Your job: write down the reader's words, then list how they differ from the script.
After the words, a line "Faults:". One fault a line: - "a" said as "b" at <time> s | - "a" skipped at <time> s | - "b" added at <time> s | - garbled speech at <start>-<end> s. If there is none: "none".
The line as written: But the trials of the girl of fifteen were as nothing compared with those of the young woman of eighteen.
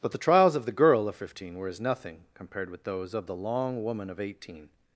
But the trials of the girl of fifteen were as nothing compared with those of the long woman of eighteen.
Faults:
- "young" said as "long" at 3.3 s